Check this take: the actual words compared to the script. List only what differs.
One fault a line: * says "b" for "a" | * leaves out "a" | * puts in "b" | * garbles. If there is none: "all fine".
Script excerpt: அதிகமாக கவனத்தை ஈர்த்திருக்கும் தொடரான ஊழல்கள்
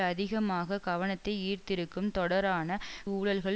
all fine